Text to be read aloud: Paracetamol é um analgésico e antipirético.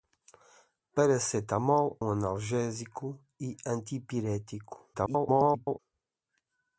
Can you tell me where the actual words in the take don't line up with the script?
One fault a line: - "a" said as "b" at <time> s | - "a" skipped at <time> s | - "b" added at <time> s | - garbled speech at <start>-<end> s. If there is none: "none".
- "é" skipped at 2.0 s
- garbled speech at 4.9-5.8 s